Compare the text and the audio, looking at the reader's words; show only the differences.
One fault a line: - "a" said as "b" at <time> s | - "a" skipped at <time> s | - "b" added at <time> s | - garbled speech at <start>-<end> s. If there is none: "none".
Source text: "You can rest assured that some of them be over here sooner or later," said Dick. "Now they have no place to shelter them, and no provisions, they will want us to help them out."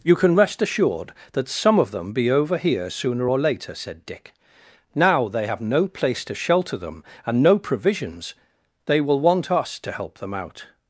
none